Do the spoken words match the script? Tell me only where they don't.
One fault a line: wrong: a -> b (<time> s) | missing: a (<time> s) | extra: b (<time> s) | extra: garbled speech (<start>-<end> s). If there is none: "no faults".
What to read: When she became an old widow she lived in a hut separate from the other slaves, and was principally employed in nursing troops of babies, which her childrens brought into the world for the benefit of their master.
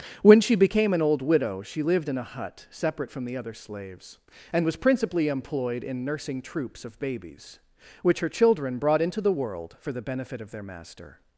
wrong: childrens -> children (8.3 s)